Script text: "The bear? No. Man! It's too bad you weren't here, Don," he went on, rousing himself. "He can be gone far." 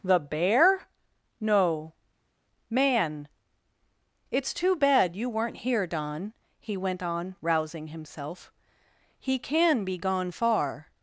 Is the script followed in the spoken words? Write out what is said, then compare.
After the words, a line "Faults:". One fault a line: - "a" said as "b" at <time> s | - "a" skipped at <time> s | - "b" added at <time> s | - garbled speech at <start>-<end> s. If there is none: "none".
"The bear? No. Man! It's too bad you weren't here, Don," he went on, rousing himself. "He can be gone far."
Faults:
none